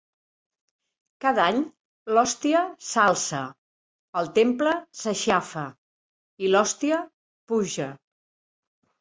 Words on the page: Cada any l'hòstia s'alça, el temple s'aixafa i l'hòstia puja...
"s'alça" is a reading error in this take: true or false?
false